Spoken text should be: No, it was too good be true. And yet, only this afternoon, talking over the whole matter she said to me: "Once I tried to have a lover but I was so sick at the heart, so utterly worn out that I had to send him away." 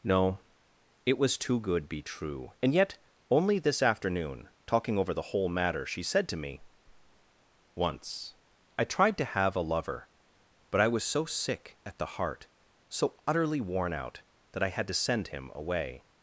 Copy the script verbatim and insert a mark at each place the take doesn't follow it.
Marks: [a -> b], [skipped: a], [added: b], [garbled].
No, it was too good be true. And yet, only this afternoon, talking over the whole matter she said to me: "Once I tried to have a lover but I was so sick at the heart, so utterly worn out that I had to send him away."